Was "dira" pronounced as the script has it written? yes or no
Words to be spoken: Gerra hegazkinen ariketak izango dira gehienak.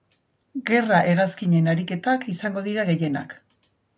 yes